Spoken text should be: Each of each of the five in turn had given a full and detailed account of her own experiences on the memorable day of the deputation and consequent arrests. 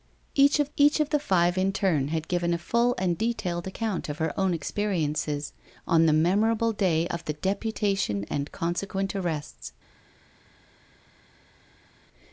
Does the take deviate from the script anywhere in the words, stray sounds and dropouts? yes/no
no